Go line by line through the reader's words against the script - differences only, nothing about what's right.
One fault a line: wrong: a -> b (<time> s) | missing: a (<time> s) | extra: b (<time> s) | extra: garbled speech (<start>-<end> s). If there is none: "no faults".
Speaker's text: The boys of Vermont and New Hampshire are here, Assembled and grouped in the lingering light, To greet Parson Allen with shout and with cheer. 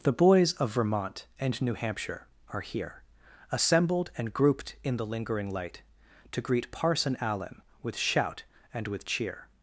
no faults